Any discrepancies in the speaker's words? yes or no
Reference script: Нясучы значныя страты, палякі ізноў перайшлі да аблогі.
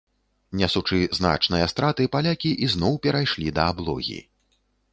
no